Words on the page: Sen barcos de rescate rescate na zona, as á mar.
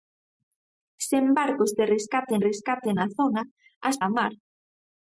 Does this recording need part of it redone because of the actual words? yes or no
no